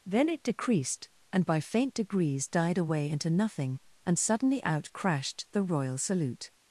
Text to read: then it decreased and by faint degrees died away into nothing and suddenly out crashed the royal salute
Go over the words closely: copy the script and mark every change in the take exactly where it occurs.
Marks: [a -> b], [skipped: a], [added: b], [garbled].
then it decreased and by faint degrees died away into nothing and suddenly out crashed the royal salute